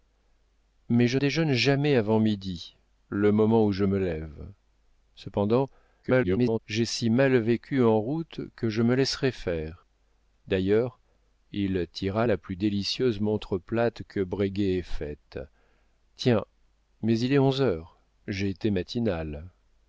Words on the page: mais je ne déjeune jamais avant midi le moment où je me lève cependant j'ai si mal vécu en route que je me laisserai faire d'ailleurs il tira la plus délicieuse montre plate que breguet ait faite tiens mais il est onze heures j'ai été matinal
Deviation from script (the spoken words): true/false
true